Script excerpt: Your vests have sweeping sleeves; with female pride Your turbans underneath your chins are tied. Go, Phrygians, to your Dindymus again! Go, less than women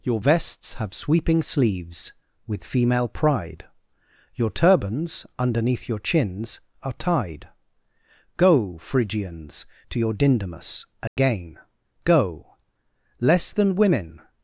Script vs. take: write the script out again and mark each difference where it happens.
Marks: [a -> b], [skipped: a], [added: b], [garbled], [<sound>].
Your vests have sweeping sleeves; with female pride Your turbans underneath your chins are tied. Go, Phrygians, to your Dindymus again! [dropout] Go, less than women